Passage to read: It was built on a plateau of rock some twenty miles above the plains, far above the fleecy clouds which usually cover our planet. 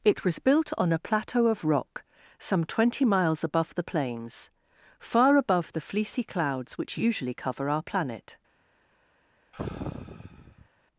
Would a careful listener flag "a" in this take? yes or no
no